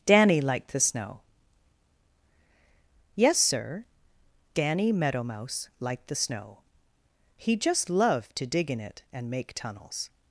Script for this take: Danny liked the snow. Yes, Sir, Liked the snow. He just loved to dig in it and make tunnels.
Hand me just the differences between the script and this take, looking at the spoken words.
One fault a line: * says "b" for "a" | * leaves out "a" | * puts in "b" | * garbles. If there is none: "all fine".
* puts in "Danny Meadow Mouse"